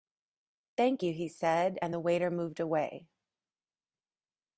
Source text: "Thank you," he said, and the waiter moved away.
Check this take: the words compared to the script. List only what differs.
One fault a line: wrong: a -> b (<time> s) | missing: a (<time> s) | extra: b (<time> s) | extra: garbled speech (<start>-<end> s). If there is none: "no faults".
no faults